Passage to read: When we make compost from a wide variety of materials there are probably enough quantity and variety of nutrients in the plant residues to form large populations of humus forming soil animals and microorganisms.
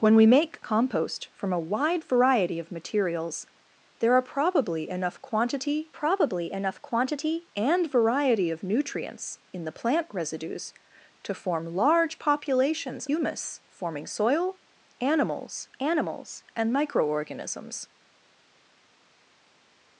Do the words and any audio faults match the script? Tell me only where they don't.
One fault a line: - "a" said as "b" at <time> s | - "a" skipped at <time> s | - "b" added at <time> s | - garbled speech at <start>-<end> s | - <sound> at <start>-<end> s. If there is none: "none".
- "probably enough quantity" added at 5.9 s
- "of" skipped at 13.1 s
- "animals" added at 15.8 s